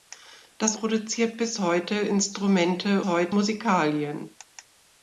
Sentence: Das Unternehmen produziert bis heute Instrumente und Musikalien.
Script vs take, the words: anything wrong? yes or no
yes